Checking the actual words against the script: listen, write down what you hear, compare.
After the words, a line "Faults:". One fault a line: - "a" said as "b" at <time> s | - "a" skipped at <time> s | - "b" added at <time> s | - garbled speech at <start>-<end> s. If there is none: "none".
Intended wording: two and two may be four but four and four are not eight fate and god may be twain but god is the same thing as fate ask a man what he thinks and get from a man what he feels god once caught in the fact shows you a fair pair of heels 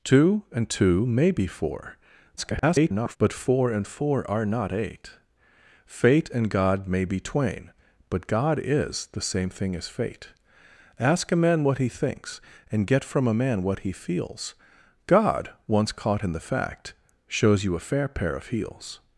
two and two may be four [garbled] but four and four are not eight fate and god may be twain but god is the same thing as fate ask a man what he thinks and get from a man what he feels god once caught in the fact shows you a fair pair of heels
Faults:
- garbled speech at 2.4-3.2 s